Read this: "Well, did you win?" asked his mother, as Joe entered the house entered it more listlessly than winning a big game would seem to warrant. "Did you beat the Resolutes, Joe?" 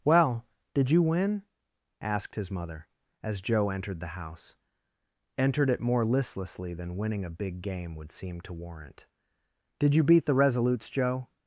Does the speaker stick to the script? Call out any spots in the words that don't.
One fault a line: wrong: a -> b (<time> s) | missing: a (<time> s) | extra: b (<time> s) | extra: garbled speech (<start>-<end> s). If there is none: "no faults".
no faults